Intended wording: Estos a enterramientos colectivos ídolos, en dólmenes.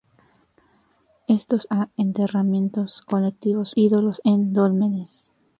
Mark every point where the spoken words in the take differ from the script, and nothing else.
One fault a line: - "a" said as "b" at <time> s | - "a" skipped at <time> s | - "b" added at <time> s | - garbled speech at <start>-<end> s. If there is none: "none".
none